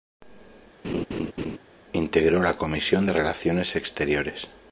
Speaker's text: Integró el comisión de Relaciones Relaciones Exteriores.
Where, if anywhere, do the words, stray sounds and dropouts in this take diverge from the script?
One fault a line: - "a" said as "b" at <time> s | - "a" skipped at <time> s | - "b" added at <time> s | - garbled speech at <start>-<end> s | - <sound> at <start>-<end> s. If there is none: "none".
- laugh at 0.8-1.6 s
- "el" said as "la" at 2.4 s
- "Relaciones" skipped at 3.7 s